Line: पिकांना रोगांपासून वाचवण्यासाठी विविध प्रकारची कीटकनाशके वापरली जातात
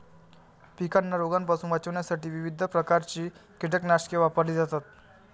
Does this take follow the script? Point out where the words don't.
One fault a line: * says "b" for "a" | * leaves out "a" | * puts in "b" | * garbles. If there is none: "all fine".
all fine